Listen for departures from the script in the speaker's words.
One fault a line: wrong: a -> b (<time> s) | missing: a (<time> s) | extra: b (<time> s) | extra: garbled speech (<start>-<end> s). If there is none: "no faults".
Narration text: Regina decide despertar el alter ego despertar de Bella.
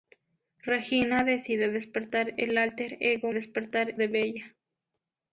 no faults